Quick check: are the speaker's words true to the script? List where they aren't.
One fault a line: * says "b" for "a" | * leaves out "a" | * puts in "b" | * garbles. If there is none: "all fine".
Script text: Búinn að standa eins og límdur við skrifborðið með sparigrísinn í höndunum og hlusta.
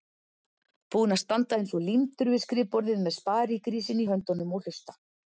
all fine